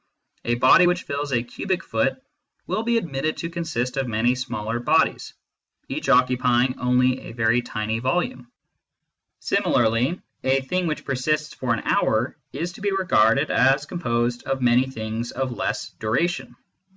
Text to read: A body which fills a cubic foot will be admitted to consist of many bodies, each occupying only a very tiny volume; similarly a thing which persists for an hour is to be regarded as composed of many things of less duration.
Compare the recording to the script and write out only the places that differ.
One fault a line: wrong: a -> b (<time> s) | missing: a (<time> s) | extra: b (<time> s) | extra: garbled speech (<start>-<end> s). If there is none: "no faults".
extra: smaller (4.3 s)